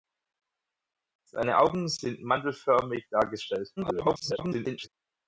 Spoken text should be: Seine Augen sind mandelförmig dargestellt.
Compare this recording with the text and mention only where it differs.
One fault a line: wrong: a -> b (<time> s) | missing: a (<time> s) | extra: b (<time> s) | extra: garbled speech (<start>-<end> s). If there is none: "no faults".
extra: garbled speech (3.8-4.9 s)